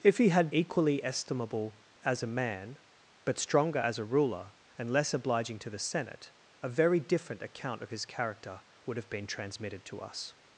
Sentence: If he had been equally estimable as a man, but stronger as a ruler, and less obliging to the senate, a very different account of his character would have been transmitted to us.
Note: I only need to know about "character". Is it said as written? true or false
true